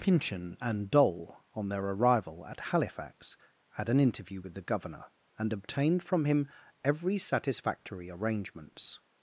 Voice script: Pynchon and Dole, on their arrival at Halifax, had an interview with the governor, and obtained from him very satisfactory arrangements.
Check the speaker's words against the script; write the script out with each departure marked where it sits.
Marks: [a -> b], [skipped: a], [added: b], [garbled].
Pynchon and Dole, on their arrival at Halifax, had an interview with the governor, and obtained from him [very -> every] satisfactory arrangements.